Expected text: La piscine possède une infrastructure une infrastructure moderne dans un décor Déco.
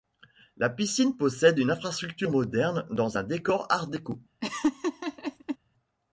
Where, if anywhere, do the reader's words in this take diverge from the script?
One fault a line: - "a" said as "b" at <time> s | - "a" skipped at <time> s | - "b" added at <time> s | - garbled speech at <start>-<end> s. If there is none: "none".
- "une infrastructure" skipped at 2.3 s
- "Art" added at 3.7 s